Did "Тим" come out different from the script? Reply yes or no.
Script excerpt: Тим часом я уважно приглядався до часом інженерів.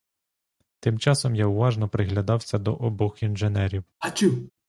no